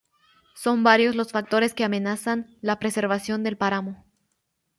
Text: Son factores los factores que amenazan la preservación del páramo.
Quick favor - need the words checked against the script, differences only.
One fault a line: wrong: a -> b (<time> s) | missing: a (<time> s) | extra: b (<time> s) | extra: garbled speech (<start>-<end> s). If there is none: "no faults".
wrong: factores -> varios (0.8 s)